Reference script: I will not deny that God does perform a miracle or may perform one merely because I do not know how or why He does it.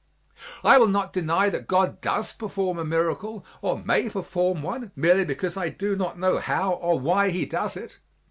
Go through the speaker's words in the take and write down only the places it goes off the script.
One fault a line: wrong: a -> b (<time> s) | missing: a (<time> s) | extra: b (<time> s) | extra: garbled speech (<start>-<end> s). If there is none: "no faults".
no faults